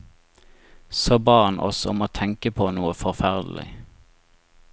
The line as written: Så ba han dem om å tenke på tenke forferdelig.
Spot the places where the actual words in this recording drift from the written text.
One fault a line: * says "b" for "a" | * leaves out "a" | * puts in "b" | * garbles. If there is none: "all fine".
* says "oss" for "dem"
* says "noe" for "tenke"